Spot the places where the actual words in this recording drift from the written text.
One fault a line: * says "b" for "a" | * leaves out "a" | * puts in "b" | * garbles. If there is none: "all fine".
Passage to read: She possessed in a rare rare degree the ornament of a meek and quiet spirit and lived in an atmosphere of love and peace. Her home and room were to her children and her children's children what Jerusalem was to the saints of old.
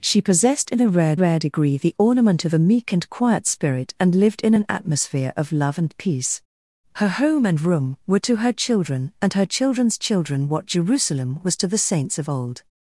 all fine